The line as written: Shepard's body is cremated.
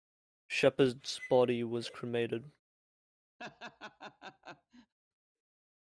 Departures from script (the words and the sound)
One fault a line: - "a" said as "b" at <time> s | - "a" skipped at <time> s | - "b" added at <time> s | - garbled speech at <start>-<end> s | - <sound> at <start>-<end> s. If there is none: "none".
- "is" said as "was" at 1.6 s
- laugh at 3.4-4.9 s